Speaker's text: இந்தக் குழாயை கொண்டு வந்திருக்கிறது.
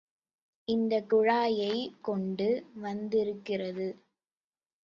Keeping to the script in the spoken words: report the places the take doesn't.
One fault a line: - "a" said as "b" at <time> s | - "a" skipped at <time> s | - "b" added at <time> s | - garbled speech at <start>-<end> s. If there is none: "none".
none